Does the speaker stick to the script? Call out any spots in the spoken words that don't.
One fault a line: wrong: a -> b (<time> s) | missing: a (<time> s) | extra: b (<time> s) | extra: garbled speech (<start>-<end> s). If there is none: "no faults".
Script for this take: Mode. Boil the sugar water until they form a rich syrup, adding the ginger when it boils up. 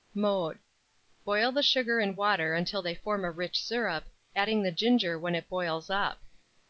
extra: and (2.0 s)